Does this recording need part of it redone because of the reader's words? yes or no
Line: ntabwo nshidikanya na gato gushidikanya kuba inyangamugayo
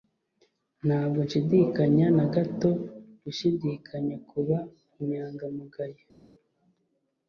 no